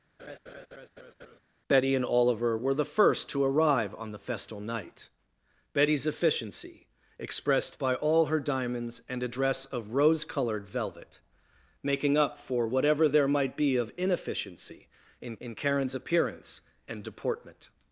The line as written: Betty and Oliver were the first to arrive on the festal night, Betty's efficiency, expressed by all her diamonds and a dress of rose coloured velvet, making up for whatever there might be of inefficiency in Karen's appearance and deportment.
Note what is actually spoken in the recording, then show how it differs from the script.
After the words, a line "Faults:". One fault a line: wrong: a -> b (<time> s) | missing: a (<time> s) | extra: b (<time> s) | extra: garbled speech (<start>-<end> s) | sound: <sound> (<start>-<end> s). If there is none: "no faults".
Betty and Oliver were the first to arrive on the festal night, Betty's efficiency, expressed by all her diamonds and a dress of rose coloured velvet, making up for whatever there might be of inefficiency in in Karen's appearance and deportment.
Faults:
sound: laugh (0.2-1.4 s)
extra: in (15.4 s)